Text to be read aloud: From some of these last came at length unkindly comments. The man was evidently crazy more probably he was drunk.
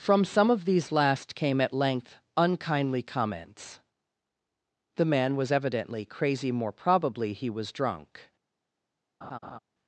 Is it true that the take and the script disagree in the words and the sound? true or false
true